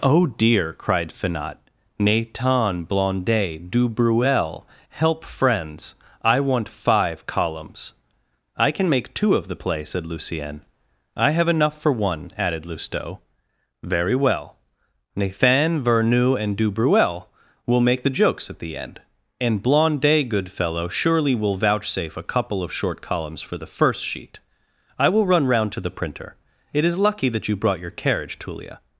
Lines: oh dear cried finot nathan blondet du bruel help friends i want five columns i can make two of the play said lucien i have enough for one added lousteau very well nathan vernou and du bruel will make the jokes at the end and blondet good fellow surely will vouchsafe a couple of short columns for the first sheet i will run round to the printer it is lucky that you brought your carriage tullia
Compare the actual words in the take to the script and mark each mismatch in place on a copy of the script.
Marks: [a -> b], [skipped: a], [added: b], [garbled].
oh dear cried finot nathan blondet du bruel help friends i want five columns i can make two of the play said lucien i have enough for one added lousteau very well nathan vernou and du bruel will make the jokes at the end and blondet good fellow surely will vouchsafe a couple of short columns for the first sheet i will run round to the printer it is lucky that you brought your carriage tullia